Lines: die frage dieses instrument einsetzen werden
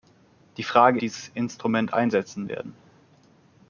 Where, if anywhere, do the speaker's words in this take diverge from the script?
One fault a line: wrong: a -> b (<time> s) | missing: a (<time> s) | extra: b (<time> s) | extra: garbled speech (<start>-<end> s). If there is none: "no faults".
no faults